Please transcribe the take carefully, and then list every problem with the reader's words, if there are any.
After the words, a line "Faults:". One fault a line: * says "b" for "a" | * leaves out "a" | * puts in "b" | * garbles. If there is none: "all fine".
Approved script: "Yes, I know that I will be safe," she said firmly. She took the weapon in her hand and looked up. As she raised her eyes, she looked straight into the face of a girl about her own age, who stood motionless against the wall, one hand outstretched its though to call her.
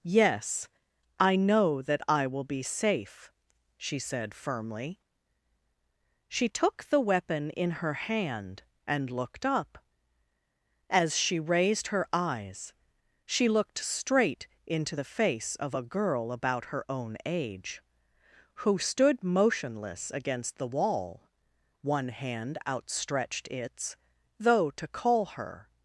"Yes, I know that I will be safe," she said firmly. She took the weapon in her hand and looked up. As she raised her eyes, she looked straight into the face of a girl about her own age, who stood motionless against the wall, one hand outstretched its though to call her.
Faults:
all fine